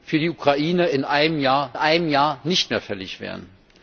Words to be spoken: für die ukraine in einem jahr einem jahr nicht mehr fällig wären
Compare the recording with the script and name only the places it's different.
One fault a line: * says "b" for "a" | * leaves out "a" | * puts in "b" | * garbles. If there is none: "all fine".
all fine